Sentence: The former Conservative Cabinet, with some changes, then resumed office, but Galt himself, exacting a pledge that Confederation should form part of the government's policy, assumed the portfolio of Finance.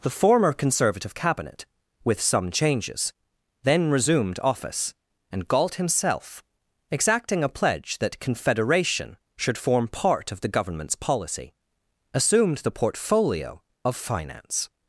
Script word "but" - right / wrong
wrong